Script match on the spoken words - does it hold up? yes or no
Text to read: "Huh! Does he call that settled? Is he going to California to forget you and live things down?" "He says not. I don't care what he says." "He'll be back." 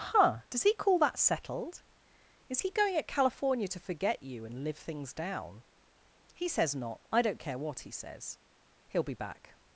no